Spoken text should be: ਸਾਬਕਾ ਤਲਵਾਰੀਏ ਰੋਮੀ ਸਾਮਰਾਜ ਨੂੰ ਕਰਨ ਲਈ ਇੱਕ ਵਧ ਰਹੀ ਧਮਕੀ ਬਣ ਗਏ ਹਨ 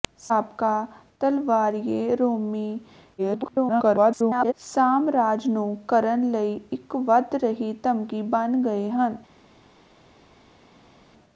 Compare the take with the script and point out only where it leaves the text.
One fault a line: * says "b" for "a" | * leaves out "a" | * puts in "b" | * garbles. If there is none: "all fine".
* garbles